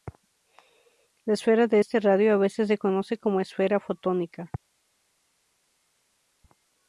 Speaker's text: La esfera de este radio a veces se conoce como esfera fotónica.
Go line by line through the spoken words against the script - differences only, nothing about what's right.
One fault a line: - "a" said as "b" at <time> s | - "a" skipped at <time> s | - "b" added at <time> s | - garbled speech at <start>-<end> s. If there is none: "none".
none